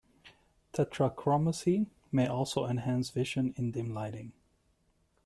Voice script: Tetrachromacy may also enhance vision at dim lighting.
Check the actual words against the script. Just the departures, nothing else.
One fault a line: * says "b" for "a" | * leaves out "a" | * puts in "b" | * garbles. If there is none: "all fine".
* says "in" for "at"